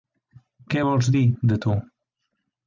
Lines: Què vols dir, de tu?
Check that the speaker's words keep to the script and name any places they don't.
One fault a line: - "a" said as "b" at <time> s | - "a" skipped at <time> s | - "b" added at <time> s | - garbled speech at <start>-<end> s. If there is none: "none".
none